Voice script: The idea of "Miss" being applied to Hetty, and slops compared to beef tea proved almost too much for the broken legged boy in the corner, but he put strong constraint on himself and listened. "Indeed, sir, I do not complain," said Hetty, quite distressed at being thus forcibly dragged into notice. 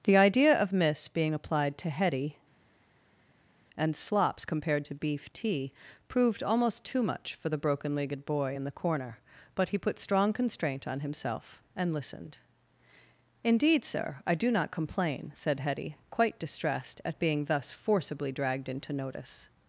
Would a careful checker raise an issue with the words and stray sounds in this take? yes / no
no